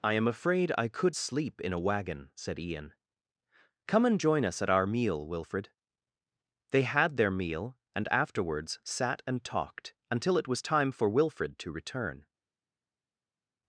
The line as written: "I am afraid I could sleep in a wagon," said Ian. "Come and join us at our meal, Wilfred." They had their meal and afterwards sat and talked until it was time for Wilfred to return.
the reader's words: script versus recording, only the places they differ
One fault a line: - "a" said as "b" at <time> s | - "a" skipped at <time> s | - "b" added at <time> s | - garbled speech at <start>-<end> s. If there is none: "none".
none